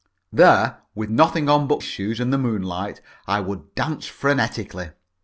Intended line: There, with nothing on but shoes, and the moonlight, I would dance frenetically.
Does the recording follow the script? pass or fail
pass